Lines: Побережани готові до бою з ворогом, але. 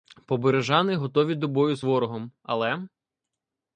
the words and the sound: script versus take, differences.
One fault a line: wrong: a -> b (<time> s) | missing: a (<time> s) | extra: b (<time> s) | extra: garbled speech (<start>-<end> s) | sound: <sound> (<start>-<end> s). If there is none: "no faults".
no faults